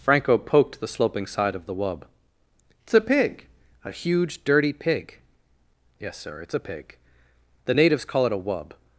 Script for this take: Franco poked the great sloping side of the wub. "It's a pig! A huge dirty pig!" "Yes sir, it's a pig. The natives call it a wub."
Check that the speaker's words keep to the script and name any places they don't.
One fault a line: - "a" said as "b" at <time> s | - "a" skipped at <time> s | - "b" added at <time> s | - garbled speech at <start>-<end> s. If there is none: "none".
- "great" skipped at 0.9 s